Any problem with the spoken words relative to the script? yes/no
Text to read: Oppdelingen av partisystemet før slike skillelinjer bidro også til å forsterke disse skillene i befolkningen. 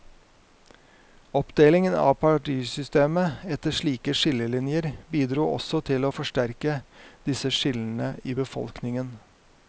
yes